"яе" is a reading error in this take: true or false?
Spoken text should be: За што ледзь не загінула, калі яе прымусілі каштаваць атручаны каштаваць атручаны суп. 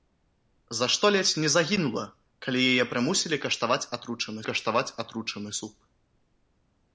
false